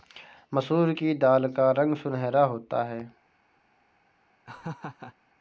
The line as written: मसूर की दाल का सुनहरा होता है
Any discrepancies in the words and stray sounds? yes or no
yes